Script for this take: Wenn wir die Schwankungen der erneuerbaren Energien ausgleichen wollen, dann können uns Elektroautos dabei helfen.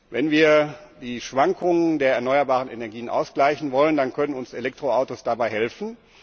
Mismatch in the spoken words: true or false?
false